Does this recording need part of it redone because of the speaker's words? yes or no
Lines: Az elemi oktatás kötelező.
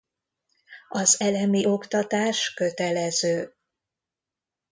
no